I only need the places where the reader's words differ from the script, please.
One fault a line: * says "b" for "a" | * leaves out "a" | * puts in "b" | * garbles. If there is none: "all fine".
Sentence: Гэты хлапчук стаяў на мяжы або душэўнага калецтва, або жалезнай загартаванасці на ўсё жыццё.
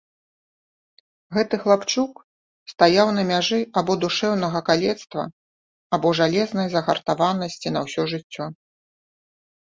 all fine